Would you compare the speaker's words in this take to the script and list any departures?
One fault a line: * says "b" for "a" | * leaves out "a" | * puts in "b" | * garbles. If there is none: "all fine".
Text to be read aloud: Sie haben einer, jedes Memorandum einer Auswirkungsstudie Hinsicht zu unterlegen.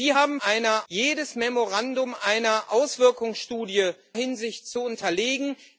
all fine